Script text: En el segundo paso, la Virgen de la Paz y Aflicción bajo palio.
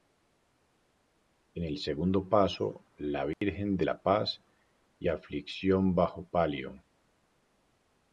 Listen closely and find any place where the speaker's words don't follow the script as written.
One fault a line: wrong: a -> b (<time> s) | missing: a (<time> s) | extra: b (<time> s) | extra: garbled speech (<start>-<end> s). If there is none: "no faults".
no faults